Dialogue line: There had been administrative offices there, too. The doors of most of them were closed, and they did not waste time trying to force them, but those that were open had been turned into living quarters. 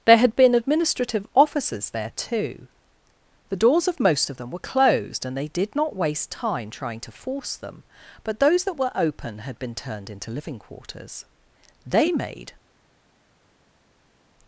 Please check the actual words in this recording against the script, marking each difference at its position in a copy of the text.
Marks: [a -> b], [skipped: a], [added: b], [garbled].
There had been administrative offices there, too. The doors of most of them were closed, and they did not waste time trying to force them, but those that were open had been turned into living quarters. [added: They made]